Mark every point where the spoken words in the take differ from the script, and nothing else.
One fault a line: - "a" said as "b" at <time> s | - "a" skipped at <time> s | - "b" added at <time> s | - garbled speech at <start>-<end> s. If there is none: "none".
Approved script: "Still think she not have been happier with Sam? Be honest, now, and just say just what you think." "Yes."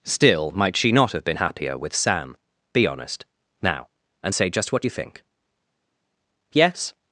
- "think" said as "might" at 0.5 s
- "just" skipped at 4.3 s